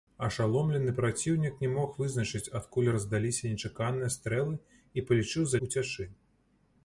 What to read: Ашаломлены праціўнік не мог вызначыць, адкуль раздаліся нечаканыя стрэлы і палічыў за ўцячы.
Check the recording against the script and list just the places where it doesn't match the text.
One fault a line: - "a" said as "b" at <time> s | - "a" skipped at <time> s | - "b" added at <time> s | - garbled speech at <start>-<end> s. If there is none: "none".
none